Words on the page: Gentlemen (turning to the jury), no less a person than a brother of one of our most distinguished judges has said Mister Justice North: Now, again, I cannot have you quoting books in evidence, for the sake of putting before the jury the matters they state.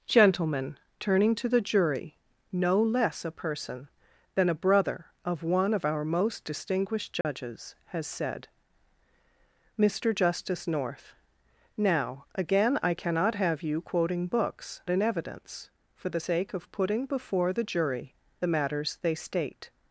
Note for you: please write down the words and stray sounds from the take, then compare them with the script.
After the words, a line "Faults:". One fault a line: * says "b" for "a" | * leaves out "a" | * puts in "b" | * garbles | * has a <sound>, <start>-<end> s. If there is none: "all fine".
Gentlemen (turning to the jury), no less a person than a brother of one of our most distinguished judges has said Mister Justice North: Now, again, I cannot have you quoting books in evidence, for the sake of putting before the jury the matters they state.
Faults:
* has a dropout, 7.2-7.2 s